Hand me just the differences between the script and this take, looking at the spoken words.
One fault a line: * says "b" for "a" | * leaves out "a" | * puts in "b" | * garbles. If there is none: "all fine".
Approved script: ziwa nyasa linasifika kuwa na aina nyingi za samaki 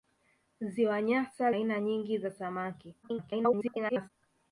* leaves out "linasifika kuwa na"
* garbles